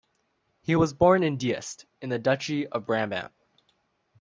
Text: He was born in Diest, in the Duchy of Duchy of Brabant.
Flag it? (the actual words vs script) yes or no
yes